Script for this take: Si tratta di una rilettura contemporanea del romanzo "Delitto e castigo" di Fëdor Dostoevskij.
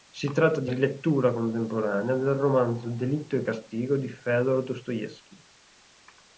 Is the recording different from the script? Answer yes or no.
yes